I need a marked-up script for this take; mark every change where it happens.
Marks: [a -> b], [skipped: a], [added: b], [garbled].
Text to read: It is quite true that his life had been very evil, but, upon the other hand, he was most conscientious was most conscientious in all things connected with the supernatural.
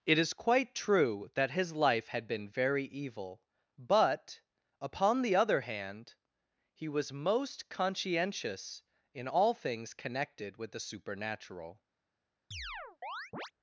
It is quite true that his life had been very evil, but, upon the other hand, he was most conscientious [skipped: was most conscientious] in all things connected with the supernatural.